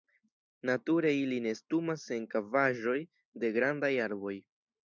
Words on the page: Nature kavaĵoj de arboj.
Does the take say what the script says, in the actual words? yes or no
no